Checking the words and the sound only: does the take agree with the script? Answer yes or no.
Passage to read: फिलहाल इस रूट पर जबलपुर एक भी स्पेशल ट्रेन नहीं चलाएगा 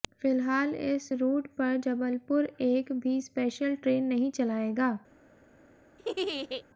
no